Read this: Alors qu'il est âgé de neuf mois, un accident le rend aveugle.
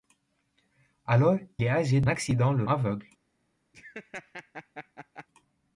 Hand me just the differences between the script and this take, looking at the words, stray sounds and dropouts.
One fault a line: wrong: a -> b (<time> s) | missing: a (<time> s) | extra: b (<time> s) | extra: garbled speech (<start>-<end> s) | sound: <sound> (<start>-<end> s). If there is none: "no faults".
missing: qu'il (1.4 s)
missing: neuf mois un (2.1 s)
missing: rend (2.6 s)
sound: laugh (3.7-5.3 s)